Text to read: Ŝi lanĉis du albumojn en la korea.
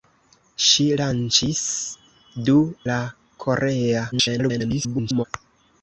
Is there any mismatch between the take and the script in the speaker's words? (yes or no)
yes